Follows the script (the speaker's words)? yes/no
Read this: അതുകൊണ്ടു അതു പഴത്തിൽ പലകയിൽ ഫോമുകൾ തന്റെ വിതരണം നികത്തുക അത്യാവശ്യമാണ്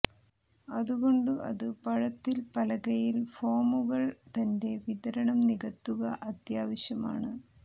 yes